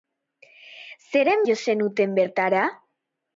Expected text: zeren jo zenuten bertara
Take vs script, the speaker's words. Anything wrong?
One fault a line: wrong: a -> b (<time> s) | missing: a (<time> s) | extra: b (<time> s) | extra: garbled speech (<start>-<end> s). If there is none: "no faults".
no faults